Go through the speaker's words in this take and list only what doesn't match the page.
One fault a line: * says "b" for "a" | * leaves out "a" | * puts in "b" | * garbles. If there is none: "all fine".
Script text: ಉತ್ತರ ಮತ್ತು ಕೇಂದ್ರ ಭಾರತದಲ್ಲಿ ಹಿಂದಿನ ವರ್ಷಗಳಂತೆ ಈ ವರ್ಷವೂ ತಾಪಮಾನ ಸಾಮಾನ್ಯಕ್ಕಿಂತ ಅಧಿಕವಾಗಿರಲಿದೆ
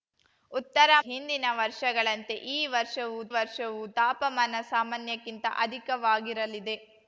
* leaves out "ಮತ್ತು ಕೇಂದ್ರ ಭಾರತದಲ್ಲಿ"
* puts in "ವರ್ಷವೂ"